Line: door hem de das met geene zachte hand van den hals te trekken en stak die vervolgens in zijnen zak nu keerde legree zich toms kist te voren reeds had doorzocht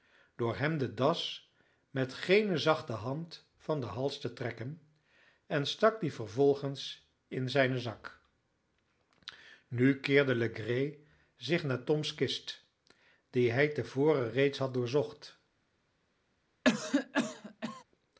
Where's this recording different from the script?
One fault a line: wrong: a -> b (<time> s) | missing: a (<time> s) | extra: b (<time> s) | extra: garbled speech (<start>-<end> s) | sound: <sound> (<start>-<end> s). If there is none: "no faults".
extra: naar (11.6 s)
extra: die hij (13.3 s)
sound: cough (16.6-17.8 s)